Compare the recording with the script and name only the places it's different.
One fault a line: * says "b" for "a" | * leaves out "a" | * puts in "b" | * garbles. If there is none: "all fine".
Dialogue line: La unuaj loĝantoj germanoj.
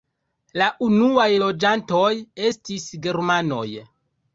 * puts in "estis"